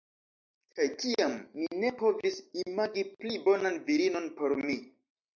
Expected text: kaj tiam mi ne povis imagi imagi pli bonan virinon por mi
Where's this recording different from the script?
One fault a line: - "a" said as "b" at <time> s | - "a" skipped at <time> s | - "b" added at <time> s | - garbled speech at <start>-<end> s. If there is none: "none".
- "imagi" skipped at 3.0 s